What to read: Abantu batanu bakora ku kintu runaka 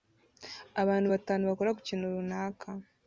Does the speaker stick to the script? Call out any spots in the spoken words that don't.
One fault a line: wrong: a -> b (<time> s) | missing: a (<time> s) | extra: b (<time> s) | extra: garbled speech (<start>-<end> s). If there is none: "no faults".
no faults